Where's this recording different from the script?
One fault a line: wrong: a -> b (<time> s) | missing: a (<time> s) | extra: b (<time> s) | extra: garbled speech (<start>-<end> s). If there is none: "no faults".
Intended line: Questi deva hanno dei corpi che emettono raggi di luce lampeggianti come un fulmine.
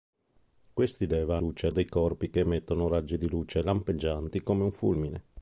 wrong: hanno -> luce (1.4 s)